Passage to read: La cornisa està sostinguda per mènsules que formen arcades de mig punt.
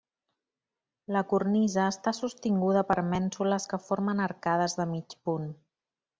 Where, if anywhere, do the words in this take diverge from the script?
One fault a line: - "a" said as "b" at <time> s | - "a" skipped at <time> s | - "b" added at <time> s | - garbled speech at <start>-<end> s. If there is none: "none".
none